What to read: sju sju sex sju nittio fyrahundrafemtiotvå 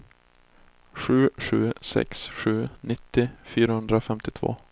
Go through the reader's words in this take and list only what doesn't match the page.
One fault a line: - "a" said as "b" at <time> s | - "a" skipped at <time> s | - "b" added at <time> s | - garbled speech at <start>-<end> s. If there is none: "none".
none